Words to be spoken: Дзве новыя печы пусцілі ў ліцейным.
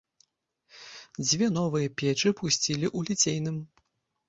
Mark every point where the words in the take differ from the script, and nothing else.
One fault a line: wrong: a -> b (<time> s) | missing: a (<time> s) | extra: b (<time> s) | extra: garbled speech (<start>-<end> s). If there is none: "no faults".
no faults